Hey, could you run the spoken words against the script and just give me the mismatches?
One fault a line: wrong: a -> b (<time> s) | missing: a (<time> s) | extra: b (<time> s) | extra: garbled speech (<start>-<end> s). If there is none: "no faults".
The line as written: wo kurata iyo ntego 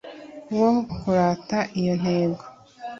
no faults